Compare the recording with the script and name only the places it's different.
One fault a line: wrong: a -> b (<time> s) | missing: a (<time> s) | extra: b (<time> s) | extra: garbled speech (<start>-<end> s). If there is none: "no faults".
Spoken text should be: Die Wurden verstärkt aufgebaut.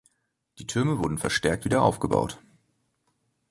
extra: Türme (0.7 s)
extra: wieder (1.7 s)